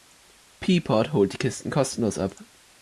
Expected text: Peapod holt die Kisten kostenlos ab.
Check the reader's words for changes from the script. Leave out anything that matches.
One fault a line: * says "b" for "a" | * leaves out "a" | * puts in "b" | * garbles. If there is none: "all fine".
all fine